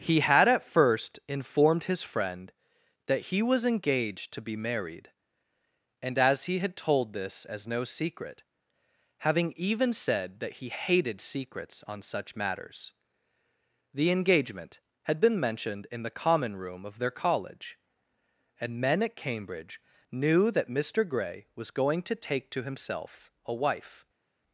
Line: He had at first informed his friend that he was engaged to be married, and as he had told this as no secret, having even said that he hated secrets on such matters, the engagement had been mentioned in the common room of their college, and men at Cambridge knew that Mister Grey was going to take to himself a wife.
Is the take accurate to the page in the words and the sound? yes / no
yes